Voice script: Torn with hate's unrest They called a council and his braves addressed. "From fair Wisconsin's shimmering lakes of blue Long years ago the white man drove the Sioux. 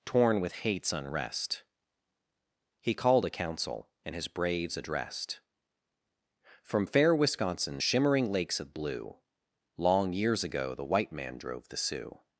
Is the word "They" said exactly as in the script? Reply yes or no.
no